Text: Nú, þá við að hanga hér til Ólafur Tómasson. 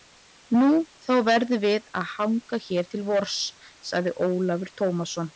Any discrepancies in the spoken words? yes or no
yes